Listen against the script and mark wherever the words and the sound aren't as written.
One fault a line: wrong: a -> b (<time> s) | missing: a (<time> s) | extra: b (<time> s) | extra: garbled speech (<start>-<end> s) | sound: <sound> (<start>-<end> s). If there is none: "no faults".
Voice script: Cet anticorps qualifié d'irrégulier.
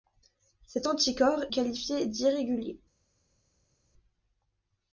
no faults